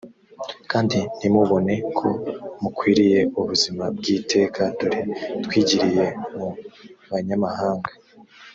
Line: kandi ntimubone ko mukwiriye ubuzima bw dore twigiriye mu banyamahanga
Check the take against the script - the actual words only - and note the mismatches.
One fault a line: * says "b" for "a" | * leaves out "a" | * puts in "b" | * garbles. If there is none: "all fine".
* puts in "iteka"